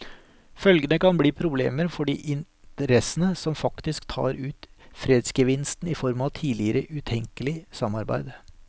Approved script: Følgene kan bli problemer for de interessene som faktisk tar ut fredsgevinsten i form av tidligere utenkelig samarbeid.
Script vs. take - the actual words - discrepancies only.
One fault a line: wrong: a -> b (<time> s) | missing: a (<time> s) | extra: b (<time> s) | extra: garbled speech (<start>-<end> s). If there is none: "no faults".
no faults